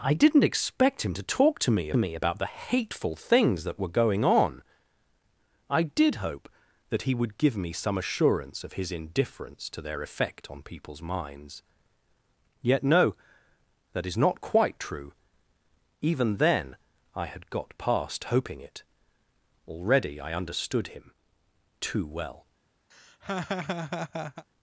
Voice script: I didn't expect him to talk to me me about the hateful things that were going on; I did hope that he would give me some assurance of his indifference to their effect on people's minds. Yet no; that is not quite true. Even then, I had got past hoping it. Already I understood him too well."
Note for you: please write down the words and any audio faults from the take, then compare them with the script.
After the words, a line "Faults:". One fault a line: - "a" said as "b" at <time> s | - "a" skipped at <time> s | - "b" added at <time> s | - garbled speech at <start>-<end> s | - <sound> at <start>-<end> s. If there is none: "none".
I didn't expect him to talk to me me about the hateful things that were going on; I did hope that he would give me some assurance of his indifference to their effect on people's minds. Yet no; that is not quite true. Even then, I had got past hoping it. Already I understood him too well."
Faults:
- laugh at 22.9-24.5 s